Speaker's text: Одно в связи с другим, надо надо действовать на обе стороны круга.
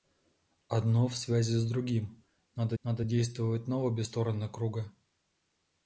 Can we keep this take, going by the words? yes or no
yes